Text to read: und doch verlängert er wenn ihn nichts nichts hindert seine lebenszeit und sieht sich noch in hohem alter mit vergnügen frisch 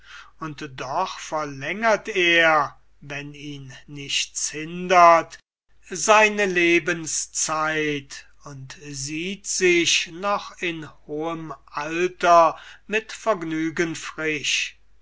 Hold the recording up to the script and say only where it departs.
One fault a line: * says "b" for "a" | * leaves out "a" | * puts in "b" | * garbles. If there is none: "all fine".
* leaves out "nichts"